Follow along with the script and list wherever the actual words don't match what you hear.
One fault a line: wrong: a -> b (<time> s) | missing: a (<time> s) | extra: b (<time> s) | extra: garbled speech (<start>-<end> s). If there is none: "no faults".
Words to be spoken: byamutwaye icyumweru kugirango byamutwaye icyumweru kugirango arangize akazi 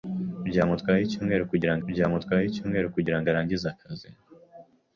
no faults